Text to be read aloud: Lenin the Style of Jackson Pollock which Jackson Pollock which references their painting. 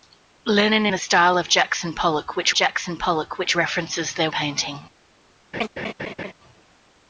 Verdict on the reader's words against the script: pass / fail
pass